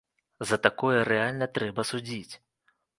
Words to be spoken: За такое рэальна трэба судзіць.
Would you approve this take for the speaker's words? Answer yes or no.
yes